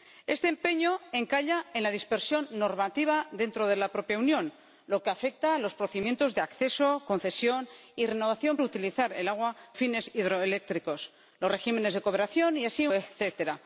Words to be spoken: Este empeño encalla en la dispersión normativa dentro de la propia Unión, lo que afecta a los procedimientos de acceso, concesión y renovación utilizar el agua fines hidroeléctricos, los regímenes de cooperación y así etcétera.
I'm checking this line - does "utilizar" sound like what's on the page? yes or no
yes